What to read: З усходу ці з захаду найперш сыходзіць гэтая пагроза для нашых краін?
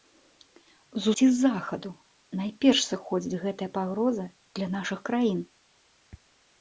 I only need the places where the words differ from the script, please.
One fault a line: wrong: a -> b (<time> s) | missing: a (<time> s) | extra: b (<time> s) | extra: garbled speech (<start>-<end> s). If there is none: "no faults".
missing: усходу (1.1 s)